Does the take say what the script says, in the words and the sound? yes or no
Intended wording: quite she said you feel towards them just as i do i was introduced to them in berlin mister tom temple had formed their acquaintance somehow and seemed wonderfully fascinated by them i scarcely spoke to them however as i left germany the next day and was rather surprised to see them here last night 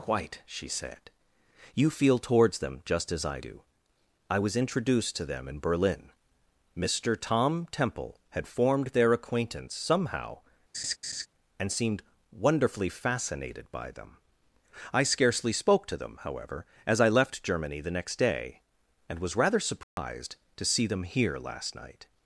no